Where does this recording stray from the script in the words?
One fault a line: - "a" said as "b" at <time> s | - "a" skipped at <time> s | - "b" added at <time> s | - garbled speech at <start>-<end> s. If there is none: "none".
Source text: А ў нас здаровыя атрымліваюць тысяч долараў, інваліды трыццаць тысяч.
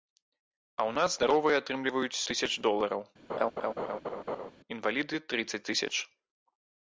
none